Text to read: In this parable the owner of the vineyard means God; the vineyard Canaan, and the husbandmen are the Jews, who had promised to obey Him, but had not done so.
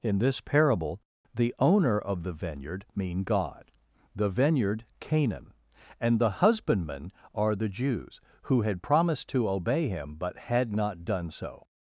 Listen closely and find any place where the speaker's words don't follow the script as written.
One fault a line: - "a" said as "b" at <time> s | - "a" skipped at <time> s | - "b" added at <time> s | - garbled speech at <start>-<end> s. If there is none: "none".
- "means" said as "mean" at 3.0 s